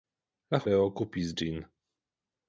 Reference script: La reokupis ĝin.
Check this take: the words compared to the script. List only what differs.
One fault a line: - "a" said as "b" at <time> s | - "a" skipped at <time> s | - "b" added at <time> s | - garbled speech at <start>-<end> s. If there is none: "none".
none